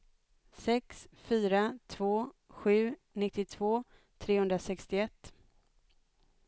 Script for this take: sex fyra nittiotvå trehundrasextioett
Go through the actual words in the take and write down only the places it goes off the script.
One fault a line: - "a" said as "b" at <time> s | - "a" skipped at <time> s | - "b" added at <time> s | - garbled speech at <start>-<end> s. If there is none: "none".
- "två sju" added at 1.9 s